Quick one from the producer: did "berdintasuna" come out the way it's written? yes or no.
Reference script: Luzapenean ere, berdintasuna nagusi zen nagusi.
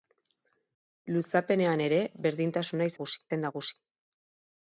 yes